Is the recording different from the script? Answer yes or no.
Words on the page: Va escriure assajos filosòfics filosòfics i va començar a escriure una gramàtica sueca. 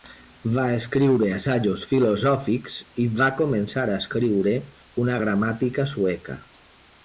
yes